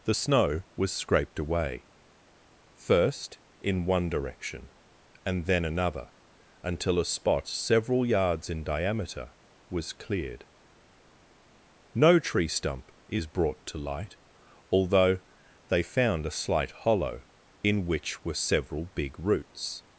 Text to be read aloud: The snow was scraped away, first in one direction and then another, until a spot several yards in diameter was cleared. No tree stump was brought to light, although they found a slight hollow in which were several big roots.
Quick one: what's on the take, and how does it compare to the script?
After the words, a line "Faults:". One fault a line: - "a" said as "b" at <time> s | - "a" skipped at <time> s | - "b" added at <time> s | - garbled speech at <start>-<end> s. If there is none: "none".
The snow was scraped away, first in one direction and then another, until a spot several yards in diameter was cleared. No tree stump is brought to light, although they found a slight hollow in which were several big roots.
Faults:
- "was" said as "is" at 13.1 s